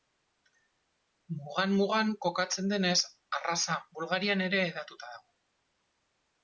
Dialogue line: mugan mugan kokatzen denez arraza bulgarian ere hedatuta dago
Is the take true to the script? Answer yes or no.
yes